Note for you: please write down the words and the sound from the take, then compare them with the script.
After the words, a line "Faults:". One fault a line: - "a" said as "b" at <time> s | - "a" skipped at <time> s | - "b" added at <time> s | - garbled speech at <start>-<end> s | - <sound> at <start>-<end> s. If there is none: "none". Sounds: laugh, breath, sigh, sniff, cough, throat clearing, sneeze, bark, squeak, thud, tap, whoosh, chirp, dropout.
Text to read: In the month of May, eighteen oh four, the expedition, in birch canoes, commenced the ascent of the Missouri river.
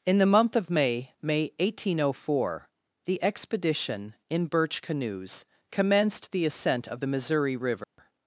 In the month of May May, eighteen oh four, the expedition, in birch canoes, commenced the ascent of the Missouri river.
Faults:
- "May" added at 1.2 s
- dropout at 7.8-8.0 s